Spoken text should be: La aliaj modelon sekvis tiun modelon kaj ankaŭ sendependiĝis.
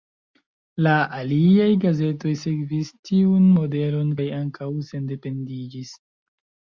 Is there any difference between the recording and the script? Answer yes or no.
yes